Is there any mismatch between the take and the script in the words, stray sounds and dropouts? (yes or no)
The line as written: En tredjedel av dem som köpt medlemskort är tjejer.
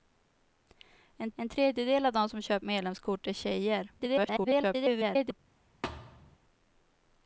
yes